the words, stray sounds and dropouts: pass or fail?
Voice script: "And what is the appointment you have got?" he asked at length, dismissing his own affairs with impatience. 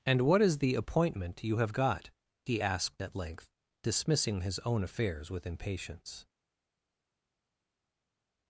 pass